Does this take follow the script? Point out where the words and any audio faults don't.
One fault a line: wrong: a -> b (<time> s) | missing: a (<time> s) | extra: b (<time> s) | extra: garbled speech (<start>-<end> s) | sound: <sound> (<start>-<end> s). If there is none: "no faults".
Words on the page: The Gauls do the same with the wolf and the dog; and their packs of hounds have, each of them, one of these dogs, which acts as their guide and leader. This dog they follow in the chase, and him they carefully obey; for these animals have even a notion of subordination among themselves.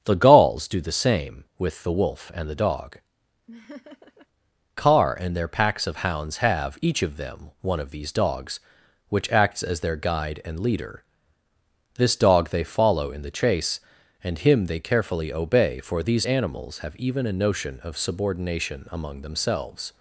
sound: laugh (3.5-4.3 s)
extra: car (4.8 s)